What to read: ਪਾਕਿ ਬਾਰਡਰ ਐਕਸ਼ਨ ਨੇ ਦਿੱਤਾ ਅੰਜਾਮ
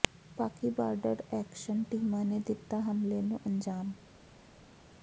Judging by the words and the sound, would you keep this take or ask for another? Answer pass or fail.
fail